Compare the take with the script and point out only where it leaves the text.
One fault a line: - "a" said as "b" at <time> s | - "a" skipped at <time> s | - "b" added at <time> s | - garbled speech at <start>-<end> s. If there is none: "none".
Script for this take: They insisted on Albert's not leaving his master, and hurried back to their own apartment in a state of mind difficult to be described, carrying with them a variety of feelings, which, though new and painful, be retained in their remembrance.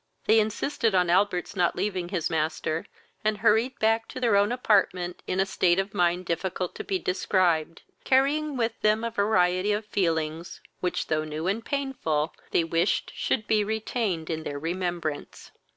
- "they wished should" added at 12.5 s